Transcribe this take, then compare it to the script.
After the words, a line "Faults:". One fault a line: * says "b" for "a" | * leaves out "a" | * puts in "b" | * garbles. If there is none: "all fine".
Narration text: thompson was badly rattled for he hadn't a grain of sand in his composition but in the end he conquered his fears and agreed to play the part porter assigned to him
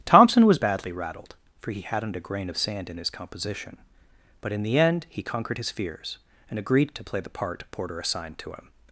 thompson was badly rattled for he hadn't a grain of sand in his composition but in the end he conquered his fears and agreed to play the part porter assigned to him
Faults:
all fine